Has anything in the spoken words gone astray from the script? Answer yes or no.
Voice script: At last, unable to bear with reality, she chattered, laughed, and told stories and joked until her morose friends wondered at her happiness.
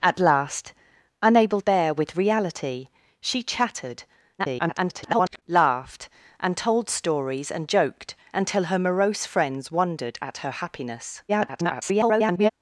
yes